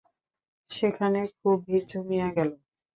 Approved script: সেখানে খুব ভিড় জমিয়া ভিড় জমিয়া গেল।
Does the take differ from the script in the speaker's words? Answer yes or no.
yes